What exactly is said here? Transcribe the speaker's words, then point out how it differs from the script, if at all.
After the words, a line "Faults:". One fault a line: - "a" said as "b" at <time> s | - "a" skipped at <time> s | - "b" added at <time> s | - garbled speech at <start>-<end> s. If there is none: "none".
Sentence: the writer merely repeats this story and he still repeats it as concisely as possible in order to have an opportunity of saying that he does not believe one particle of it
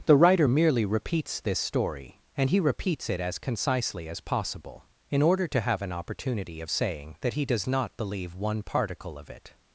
the writer merely repeats this story and he repeats it as concisely as possible in order to have an opportunity of saying that he does not believe one particle of it
Faults:
- "still" skipped at 2.6 s